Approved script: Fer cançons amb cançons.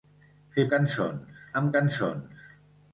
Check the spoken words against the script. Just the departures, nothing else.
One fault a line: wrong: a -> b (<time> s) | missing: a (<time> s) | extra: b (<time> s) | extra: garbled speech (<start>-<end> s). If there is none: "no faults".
no faults